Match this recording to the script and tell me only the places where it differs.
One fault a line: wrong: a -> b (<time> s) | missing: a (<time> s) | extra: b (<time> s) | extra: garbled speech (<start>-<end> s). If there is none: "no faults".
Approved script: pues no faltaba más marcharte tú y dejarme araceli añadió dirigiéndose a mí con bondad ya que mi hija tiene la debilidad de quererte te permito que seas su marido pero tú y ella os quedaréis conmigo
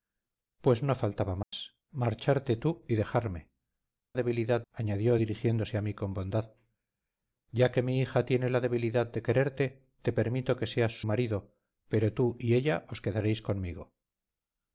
wrong: araceli -> debilidad (4.1 s)
missing: su (11.0 s)